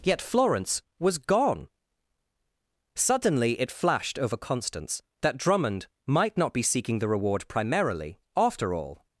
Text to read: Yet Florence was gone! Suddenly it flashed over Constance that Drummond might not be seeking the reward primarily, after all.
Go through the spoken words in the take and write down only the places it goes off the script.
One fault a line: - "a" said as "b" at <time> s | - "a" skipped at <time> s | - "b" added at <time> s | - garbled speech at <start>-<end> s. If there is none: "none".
none